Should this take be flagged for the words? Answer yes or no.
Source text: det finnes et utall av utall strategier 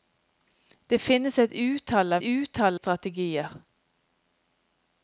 no